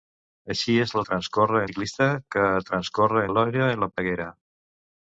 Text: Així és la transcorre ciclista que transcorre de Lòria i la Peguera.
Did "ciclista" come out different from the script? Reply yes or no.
no